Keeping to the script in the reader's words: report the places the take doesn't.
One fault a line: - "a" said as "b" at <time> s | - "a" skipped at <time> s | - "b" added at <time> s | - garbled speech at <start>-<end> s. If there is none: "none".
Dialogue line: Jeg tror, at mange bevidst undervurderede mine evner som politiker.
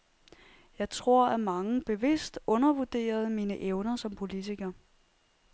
none